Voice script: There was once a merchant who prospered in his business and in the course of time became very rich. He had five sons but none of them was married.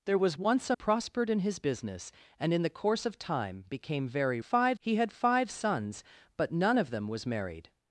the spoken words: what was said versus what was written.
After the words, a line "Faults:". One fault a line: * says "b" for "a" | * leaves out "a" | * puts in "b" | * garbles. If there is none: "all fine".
There was once a prospered in his business and in the course of time became very five. He had five sons but none of them was married.
Faults:
* leaves out "merchant who"
* says "five" for "rich"